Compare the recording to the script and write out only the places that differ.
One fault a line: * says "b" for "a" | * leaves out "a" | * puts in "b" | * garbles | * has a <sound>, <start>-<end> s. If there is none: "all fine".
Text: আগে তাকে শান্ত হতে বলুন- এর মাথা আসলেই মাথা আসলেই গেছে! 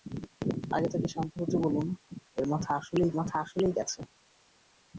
all fine